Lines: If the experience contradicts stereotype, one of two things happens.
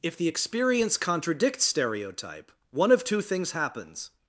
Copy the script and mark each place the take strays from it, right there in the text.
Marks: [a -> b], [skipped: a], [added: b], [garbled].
If the experience contradicts stereotype, one of two things happens.